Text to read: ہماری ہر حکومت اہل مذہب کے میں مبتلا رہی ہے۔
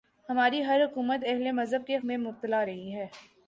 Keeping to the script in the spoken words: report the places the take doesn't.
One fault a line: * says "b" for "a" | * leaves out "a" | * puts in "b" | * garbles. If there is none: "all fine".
all fine